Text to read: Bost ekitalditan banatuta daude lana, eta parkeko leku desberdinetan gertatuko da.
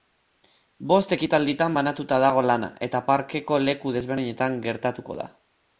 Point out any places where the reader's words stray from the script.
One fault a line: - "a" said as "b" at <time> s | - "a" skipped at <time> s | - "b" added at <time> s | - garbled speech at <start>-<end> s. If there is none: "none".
- "daude" said as "dago" at 2.2 s